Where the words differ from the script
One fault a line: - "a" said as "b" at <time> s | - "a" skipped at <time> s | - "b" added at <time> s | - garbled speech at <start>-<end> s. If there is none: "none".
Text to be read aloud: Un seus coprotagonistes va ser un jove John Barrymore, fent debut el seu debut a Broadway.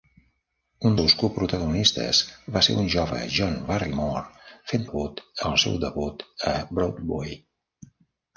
none